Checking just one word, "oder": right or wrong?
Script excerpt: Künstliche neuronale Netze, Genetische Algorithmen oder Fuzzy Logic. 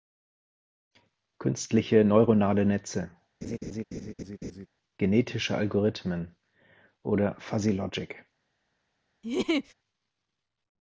right